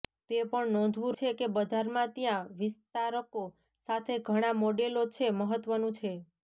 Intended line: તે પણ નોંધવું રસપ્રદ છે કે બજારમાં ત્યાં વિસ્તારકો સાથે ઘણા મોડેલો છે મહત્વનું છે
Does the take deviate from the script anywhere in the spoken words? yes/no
yes